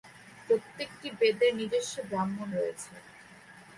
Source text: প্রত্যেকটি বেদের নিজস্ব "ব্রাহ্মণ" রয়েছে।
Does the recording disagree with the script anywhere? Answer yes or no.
no